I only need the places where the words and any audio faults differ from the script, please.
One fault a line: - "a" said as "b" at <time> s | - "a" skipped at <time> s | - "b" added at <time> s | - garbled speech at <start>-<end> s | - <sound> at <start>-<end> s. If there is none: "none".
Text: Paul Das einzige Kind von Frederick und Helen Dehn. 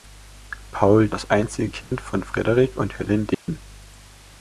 - dropout at 1.8-1.9 s
- dropout at 3.3-3.5 s